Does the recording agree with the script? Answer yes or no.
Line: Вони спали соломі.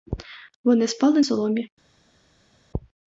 yes